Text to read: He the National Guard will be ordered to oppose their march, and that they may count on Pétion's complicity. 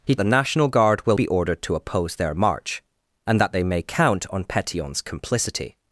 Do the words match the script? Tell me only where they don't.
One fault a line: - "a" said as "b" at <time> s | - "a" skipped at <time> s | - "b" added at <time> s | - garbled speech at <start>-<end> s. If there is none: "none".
none